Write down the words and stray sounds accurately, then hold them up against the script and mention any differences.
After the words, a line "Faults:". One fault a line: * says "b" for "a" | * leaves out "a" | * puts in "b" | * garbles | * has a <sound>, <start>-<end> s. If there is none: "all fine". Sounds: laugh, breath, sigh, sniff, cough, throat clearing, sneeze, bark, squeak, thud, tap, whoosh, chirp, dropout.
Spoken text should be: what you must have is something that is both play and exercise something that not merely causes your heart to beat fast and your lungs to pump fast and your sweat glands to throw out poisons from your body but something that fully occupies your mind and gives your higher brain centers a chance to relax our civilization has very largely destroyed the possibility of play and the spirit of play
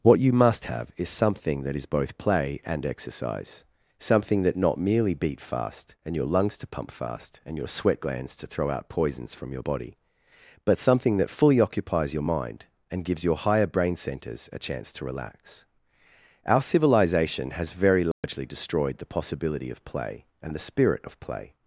what you must have is something that is both play and exercise something that not merely beat fast and your lungs to pump fast and your sweat glands to throw out poisons from your body but something that fully occupies your mind and gives your higher brain centers a chance to relax our civilization has very largely destroyed the possibility of play and the spirit of play
Faults:
* leaves out "causes your heart to"
* has a dropout, 18.1-18.2 s